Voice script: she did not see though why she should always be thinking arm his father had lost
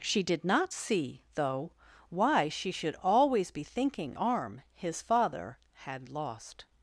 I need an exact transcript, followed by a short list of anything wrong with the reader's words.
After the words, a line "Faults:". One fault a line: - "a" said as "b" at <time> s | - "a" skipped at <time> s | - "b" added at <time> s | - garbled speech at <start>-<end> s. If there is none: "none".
she did not see though why she should always be thinking arm his father had lost
Faults:
none